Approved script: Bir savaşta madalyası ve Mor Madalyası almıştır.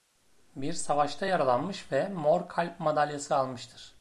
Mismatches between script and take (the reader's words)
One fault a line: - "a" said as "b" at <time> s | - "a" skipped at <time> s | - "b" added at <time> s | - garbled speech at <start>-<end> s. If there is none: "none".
- "madalyası" said as "yaralanmış" at 1.2 s
- "Kalp" added at 2.5 s